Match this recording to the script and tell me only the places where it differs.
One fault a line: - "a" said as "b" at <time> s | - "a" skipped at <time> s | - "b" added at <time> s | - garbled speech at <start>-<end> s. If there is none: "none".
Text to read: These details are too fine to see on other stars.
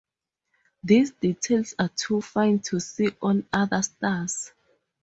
none